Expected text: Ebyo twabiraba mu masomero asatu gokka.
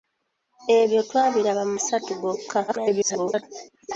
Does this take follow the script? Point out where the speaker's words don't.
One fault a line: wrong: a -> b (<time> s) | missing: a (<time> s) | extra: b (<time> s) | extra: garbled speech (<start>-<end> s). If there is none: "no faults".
missing: masomero (1.7 s)
extra: garbled speech (2.7-3.4 s)